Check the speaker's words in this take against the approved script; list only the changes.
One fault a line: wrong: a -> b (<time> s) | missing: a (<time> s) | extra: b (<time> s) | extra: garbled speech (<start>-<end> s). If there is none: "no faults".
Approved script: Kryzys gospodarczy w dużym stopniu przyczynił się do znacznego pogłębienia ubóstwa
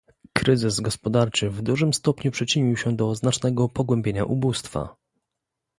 no faults